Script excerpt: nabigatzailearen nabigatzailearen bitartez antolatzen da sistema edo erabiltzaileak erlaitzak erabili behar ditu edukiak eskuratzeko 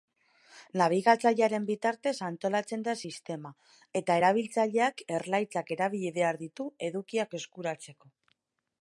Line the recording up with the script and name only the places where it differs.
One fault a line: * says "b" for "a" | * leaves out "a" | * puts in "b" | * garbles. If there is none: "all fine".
* leaves out "nabigatzailearen"
* says "eta" for "edo"